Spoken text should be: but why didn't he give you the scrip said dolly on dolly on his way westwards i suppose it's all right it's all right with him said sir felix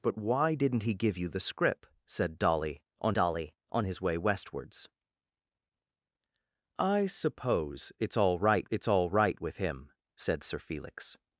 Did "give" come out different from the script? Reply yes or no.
no